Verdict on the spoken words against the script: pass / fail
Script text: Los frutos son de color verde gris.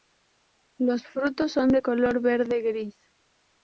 pass